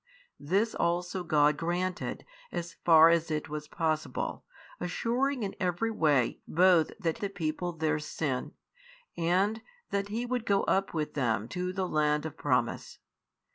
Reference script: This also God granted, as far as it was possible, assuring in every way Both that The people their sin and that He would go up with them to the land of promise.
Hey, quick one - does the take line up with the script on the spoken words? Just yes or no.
yes